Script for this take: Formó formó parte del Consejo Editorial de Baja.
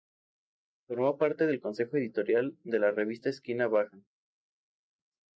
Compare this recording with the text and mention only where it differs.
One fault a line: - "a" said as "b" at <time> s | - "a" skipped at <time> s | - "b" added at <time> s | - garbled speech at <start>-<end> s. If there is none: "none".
- "formó" skipped at 1.2 s
- "la Revista Esquina" added at 2.8 s